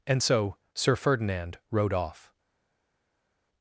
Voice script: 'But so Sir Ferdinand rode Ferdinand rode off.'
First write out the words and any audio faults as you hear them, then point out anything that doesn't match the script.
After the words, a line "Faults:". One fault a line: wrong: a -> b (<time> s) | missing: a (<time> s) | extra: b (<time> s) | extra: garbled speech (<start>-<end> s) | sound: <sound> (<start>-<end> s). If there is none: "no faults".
'And so Sir Ferdinand rode off.'
Faults:
wrong: But -> And (0.1 s)
missing: Ferdinand rode (1.9 s)